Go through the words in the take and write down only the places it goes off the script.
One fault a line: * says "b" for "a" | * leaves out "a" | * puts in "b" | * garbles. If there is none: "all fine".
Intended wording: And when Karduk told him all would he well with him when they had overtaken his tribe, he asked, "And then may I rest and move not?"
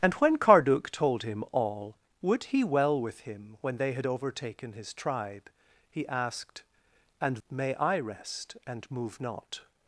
* leaves out "then"